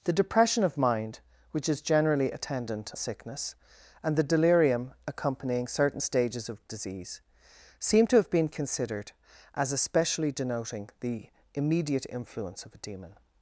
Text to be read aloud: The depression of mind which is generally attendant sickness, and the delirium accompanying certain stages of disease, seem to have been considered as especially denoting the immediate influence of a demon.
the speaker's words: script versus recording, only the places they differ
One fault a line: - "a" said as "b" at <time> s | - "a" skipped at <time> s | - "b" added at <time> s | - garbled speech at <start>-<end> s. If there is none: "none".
none